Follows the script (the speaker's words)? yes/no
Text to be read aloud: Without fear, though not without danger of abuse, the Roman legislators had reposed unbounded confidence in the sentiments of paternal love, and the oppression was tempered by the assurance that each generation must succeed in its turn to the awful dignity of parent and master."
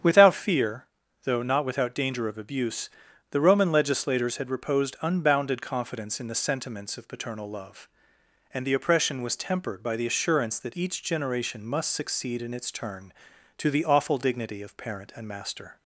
yes